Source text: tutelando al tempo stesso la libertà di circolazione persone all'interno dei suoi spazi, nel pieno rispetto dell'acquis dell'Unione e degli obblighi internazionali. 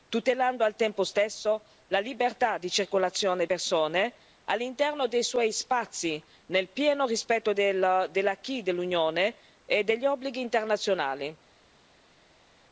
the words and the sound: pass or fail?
pass